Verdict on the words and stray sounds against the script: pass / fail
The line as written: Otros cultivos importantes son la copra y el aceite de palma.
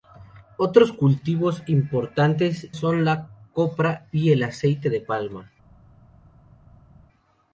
pass